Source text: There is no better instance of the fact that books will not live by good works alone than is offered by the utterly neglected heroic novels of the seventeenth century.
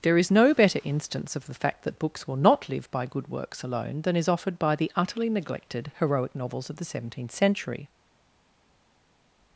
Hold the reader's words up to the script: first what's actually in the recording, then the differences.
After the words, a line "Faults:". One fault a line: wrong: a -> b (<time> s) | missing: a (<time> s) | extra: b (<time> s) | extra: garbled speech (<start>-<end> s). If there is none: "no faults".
There is no better instance of the fact that books will not live by good works alone than is offered by the utterly neglected heroic novels of the seventeenth century.
Faults:
no faults